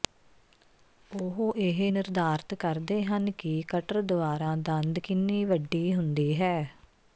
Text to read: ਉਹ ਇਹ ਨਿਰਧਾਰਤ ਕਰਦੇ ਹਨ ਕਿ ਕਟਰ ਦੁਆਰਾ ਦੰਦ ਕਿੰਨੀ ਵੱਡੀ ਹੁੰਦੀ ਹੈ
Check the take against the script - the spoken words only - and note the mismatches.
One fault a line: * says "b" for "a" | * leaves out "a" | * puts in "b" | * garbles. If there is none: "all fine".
all fine